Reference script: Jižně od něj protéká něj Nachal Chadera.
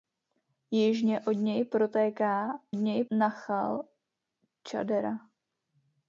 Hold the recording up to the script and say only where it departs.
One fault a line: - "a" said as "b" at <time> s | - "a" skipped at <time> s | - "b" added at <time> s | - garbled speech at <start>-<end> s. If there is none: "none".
none